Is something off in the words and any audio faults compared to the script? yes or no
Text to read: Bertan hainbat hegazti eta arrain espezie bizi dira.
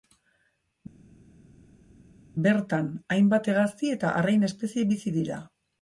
no